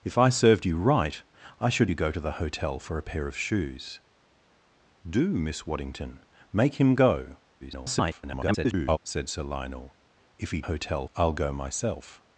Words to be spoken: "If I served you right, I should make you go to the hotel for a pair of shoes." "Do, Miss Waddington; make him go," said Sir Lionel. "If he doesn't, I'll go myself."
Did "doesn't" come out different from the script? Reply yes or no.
yes